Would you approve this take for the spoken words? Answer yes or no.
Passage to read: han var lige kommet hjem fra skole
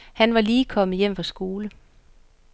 yes